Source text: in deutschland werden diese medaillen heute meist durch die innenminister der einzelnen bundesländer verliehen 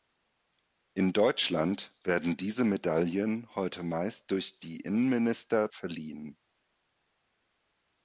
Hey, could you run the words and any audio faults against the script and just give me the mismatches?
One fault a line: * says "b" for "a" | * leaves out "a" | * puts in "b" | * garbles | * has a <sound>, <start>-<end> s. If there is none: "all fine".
* leaves out "der einzelnen bundesländer"